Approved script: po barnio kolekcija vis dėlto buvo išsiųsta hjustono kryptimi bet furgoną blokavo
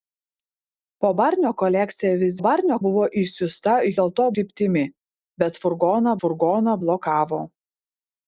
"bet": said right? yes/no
yes